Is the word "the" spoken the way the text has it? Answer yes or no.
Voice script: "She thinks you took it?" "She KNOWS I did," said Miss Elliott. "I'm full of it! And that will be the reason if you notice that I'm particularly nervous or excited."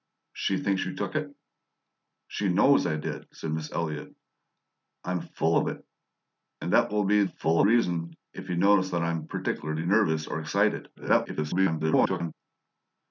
no